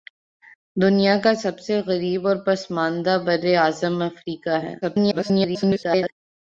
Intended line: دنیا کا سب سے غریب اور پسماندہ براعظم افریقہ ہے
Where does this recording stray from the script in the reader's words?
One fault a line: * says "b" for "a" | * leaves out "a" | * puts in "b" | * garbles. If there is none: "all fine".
* garbles